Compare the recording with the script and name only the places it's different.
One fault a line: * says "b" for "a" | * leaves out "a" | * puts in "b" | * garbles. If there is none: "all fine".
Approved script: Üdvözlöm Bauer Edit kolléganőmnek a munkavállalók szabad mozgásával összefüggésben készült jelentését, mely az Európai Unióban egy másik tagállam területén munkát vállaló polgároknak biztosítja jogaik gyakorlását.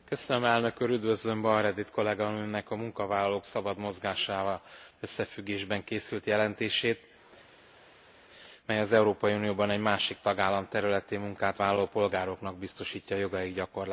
all fine